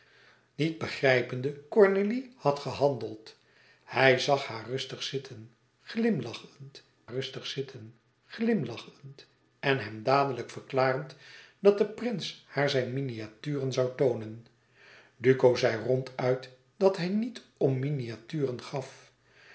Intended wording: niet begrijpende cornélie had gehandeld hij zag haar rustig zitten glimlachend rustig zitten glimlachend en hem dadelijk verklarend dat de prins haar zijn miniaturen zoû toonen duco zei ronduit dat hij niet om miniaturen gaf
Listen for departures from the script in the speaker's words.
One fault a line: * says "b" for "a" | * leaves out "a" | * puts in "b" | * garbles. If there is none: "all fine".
all fine